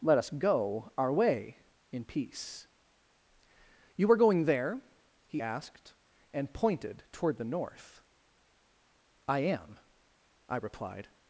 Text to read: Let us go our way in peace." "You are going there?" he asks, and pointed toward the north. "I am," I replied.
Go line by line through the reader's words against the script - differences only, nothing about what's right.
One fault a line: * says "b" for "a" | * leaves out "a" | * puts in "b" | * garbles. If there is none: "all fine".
* says "asked" for "asks"